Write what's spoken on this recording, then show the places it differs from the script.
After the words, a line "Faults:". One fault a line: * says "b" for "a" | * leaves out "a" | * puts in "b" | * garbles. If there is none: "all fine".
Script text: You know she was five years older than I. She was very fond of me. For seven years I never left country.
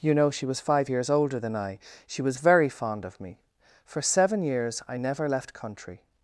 You know she was five years older than I. She was very fond of me. For seven years I never left country.
Faults:
all fine